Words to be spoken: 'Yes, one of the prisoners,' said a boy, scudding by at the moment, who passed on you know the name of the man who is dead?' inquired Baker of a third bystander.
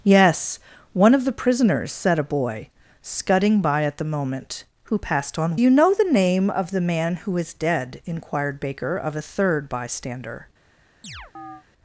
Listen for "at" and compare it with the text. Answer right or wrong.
right